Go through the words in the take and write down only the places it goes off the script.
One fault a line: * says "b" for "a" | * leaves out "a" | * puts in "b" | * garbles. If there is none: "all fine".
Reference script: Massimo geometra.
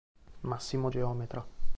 all fine